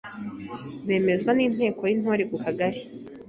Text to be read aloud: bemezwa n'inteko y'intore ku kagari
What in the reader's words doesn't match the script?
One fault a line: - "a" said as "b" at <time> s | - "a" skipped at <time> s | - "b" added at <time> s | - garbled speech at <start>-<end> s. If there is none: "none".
none